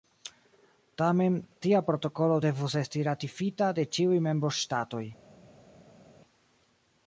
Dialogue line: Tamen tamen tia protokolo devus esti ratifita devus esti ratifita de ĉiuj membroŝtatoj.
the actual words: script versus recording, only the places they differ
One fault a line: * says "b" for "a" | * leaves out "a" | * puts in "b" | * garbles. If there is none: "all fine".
* leaves out "tamen"
* leaves out "devus esti ratifita"